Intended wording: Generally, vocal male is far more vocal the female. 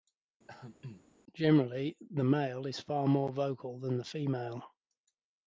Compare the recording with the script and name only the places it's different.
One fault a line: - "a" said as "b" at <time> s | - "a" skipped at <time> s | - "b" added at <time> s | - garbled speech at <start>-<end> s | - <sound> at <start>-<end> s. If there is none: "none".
- throat clearing at 0.5-1.1 s
- "vocal" said as "the" at 2.1 s
- "than" added at 3.8 s